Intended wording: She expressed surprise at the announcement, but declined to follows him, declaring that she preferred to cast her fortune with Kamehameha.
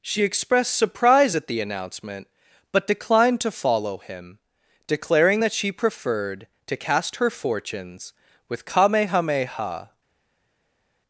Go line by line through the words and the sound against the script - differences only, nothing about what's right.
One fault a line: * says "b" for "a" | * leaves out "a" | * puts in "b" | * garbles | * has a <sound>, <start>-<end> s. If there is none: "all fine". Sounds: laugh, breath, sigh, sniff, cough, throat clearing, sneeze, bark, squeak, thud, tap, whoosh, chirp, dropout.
* says "follow" for "follows"
* says "fortunes" for "fortune"